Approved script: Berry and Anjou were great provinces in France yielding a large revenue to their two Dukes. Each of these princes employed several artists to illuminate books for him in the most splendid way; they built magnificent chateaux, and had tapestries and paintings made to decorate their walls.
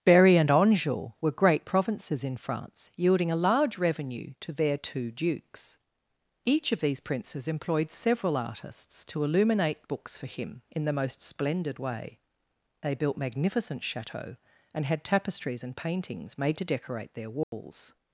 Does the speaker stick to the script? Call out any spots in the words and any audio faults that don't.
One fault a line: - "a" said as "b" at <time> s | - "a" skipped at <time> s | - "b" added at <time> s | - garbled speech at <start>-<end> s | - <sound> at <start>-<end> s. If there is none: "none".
- dropout at 17.4-17.5 s